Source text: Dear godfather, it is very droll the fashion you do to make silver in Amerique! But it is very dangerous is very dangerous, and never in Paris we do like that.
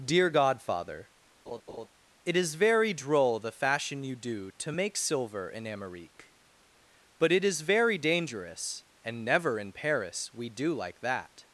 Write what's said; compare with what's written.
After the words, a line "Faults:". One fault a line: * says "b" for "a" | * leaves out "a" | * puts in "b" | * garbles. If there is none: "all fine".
Dear godfather, it is very droll the fashion you do to make silver in Amerique! But it is very dangerous, and never in Paris we do like that.
Faults:
* leaves out "is very dangerous"